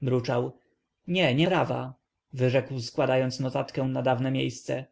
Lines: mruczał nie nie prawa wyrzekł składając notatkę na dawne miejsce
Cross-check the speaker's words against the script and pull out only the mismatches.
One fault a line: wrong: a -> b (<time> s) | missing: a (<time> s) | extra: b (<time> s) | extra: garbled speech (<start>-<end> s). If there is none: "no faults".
no faults